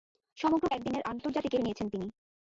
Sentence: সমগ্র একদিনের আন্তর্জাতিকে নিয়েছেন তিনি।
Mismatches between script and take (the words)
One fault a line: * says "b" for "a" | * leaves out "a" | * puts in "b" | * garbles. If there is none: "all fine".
all fine